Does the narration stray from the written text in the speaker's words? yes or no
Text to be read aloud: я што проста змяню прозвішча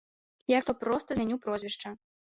no